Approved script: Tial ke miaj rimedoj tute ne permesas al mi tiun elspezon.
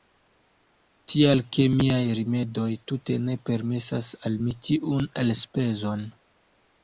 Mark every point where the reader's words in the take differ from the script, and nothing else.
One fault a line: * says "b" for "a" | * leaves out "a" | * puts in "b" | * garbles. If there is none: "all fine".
all fine